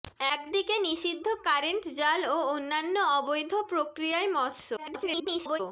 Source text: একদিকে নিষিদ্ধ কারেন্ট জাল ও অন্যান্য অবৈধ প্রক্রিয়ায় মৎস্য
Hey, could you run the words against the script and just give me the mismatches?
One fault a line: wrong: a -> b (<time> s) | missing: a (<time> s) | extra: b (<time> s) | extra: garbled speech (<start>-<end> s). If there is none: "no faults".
extra: garbled speech (4.8-5.6 s)